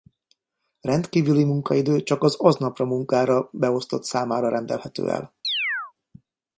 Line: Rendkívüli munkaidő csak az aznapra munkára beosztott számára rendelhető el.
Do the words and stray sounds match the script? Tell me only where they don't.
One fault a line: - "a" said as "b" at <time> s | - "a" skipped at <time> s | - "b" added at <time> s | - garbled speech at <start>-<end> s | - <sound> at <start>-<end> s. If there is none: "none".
- chirp at 5.4-5.9 s